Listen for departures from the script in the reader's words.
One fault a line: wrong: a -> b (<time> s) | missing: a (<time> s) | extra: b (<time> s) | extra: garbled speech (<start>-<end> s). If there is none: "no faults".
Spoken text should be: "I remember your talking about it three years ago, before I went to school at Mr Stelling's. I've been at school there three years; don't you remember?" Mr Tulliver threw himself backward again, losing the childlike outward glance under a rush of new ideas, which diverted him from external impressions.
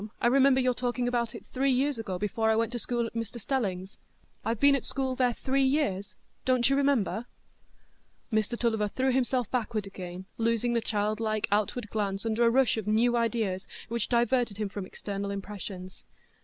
no faults